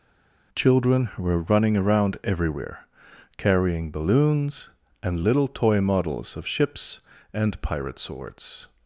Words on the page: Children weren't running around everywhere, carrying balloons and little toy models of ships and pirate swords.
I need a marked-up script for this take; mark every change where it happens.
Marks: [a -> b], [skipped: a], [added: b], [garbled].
Children [weren't -> were] running around everywhere, carrying balloons and little toy models of ships and pirate swords.